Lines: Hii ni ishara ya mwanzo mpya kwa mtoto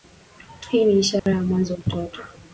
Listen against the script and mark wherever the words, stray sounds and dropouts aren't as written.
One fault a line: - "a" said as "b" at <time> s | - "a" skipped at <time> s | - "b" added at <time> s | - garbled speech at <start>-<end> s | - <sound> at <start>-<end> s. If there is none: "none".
- dropout at 1.2-1.3 s
- "mpya kwa" skipped at 1.8 s